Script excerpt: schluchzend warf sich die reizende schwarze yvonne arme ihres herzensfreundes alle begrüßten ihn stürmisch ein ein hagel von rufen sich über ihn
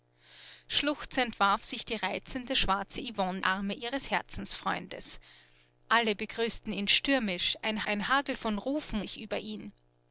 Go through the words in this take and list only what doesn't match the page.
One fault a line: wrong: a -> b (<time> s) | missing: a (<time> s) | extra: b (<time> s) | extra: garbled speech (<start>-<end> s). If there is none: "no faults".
no faults